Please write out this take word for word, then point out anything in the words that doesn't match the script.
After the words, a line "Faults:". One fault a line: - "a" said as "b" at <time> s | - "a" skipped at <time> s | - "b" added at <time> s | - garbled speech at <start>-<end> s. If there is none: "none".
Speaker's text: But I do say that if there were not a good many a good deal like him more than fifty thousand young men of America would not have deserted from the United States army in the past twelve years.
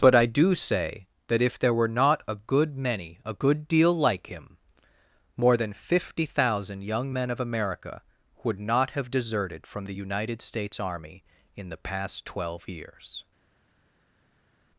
But I do say that if there were not a good many a good deal like him more than fifty thousand young men of America would not have deserted from the United States army in the past twelve years.
Faults:
none